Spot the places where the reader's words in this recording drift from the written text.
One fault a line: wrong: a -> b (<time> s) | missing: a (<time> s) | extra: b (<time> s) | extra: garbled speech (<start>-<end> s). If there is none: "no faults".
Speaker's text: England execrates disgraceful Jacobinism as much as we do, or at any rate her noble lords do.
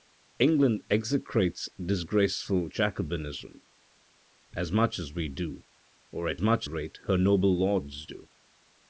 wrong: any -> much (6.4 s)